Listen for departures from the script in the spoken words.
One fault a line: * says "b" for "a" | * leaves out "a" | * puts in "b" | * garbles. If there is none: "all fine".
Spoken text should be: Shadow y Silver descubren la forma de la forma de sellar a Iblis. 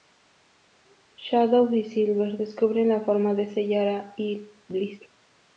* leaves out "la forma de"